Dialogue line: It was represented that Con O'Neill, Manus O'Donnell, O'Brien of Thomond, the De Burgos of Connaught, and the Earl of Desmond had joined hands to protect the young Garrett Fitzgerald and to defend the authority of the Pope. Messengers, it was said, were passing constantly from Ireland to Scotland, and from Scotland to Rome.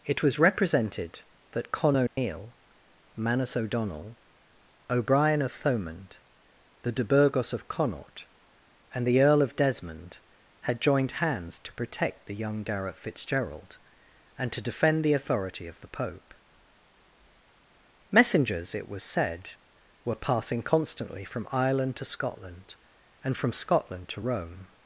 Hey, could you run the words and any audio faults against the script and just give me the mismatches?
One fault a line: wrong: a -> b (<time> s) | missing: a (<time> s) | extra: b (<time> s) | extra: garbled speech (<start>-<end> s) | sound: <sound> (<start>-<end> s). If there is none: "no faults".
sound: dropout (2.1-2.2 s)